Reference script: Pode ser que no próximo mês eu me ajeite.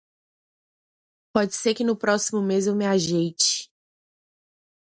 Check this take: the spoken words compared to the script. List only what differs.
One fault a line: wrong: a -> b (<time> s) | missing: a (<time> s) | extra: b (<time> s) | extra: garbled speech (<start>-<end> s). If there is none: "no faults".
no faults